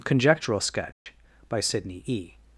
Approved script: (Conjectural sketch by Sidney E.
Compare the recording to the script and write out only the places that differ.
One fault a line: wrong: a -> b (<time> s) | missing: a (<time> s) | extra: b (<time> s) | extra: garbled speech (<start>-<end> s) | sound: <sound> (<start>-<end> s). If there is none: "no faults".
sound: dropout (0.9-1.1 s)